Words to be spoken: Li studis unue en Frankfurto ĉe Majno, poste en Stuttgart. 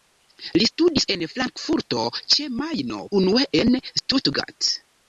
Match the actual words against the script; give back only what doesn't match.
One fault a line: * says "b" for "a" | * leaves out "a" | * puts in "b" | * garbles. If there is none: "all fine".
* leaves out "unue"
* says "unue" for "poste"